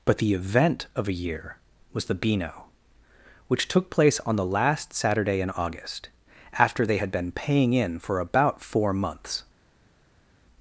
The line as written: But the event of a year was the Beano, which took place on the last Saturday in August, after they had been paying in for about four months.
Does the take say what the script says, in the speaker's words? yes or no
yes